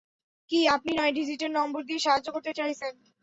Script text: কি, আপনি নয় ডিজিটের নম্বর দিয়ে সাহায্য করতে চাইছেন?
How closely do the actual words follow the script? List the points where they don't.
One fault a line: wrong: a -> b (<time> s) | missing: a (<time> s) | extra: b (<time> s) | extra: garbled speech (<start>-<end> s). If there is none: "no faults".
no faults